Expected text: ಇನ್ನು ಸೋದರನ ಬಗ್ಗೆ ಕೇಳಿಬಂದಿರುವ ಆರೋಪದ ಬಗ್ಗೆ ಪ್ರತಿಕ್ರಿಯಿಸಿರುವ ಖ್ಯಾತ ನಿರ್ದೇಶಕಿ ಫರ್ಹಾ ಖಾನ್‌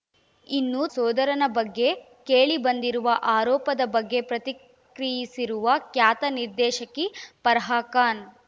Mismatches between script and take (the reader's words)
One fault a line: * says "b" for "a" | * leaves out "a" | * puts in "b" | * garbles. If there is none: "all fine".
all fine